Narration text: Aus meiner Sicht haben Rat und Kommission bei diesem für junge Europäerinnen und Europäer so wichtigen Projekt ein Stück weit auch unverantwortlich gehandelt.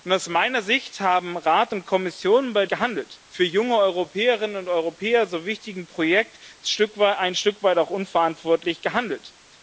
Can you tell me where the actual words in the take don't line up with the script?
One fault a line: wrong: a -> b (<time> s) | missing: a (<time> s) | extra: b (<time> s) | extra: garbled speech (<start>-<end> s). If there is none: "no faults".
wrong: diesem -> gehandelt (2.7 s)